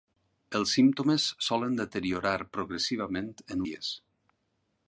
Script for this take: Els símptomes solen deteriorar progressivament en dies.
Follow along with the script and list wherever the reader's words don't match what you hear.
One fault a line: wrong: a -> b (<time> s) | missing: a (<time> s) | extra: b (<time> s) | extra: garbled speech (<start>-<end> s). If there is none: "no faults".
no faults